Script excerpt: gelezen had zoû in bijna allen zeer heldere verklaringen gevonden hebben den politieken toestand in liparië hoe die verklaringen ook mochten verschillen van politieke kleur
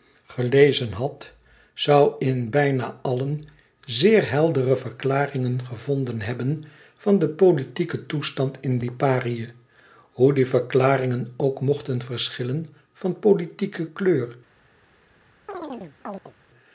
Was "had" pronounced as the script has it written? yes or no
yes